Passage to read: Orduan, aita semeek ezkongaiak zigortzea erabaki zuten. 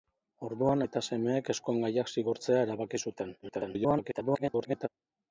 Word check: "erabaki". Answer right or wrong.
right